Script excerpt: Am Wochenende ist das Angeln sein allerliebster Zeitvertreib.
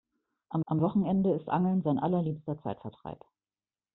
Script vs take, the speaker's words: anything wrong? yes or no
yes